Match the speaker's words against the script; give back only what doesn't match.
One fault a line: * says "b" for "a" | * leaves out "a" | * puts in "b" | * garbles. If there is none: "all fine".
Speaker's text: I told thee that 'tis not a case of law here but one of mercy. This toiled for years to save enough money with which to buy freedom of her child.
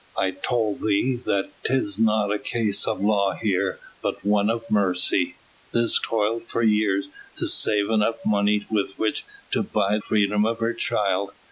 all fine